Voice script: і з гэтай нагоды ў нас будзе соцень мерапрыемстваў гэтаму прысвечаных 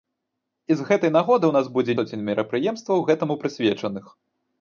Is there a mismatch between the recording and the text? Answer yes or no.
no